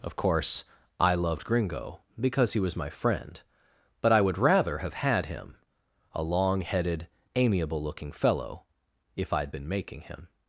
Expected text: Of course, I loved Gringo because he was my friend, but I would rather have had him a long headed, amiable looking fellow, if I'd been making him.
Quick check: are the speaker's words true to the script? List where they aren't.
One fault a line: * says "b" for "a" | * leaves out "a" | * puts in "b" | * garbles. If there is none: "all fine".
all fine